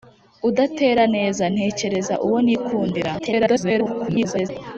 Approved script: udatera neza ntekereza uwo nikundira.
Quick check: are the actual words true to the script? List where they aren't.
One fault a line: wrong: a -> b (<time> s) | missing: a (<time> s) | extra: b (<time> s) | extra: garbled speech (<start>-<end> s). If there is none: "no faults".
extra: garbled speech (3.2-4.5 s)